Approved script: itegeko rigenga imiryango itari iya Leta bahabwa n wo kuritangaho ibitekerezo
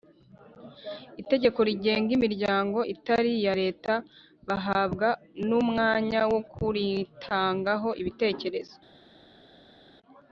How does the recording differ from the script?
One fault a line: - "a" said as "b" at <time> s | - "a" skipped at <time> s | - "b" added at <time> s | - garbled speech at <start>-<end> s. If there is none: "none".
- "umwanya" added at 5.6 s